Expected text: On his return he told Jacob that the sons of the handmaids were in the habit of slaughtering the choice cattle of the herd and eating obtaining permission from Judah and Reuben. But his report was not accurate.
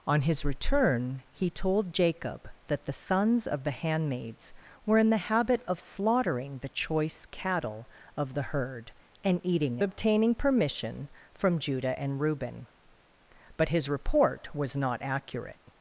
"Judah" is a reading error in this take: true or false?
false